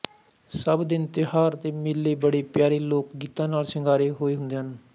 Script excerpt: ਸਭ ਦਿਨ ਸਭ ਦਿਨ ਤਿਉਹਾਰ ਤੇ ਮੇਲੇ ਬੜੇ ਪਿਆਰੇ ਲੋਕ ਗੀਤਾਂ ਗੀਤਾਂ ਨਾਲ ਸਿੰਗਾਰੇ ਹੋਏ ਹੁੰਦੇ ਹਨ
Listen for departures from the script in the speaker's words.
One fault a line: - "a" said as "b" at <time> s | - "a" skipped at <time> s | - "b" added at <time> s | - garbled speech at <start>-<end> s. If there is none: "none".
- "ਸਭ ਦਿਨ" skipped at 1.1 s
- "ਗੀਤਾਂ" skipped at 3.5 s